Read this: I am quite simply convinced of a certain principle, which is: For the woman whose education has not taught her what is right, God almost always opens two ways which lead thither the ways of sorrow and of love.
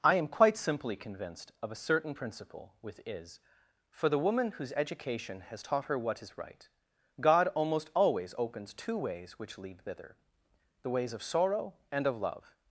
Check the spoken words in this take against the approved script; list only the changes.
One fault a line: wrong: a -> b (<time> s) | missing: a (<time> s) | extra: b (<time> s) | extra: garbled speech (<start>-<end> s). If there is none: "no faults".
wrong: which -> with (2.8 s)
missing: not (5.6 s)